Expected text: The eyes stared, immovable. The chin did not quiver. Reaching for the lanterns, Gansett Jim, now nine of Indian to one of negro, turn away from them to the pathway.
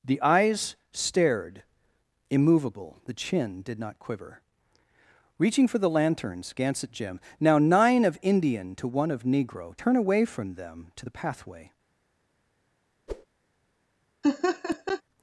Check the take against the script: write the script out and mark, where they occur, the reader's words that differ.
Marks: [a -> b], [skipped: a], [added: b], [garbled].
The eyes stared, immovable. The chin did not quiver. Reaching for the lanterns, Gansett Jim, now nine of Indian to one of negro, turn away from them to the pathway.